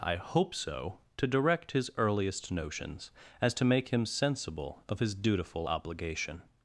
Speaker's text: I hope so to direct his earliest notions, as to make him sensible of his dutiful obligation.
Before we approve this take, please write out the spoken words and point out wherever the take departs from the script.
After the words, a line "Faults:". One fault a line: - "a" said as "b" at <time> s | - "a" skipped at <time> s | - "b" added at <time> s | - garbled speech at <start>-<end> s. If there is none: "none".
I hope so to direct his earliest notions, as to make him sensible of his dutiful obligation.
Faults:
none